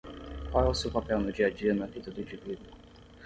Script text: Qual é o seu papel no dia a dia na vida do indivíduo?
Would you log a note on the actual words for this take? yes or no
no